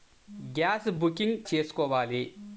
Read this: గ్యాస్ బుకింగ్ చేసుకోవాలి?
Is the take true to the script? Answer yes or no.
yes